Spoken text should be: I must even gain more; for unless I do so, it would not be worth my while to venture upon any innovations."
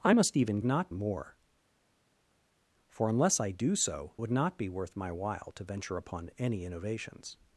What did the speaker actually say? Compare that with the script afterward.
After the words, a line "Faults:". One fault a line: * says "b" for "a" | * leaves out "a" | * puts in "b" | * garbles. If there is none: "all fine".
I must even not more; for unless I do so, would not be worth my while to venture upon any innovations."
Faults:
* says "not" for "gain"
* leaves out "it"